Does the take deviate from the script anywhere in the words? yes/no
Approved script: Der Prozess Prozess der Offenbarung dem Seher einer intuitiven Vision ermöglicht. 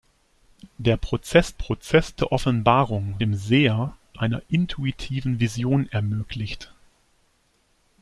no